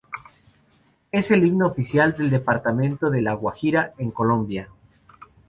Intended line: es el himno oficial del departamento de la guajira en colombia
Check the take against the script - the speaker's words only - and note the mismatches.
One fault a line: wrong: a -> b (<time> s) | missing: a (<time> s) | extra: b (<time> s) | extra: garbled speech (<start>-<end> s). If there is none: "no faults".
no faults